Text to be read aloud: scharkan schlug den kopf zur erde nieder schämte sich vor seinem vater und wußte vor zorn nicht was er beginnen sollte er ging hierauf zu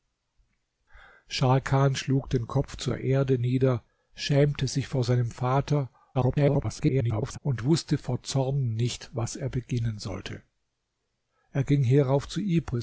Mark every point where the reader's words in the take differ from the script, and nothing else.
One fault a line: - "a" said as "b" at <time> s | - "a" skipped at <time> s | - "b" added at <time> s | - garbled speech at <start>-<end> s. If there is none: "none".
- garbled speech at 6.1-7.4 s